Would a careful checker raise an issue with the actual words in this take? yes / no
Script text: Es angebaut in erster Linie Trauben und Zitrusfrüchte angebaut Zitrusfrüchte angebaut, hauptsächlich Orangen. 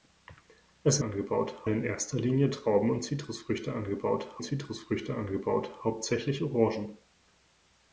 no